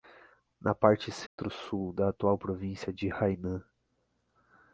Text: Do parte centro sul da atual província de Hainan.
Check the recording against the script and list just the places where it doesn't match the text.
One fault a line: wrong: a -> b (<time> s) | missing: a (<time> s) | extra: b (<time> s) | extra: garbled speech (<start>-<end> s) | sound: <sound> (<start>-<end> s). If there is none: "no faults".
wrong: Do -> Na (0.6 s)
sound: dropout (1.3-1.4 s)